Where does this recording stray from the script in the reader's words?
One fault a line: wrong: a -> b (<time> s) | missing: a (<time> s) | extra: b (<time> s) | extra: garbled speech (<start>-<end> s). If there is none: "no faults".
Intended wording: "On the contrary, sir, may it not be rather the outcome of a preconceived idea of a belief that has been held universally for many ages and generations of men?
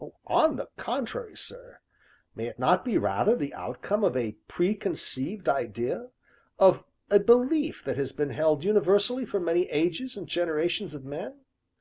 no faults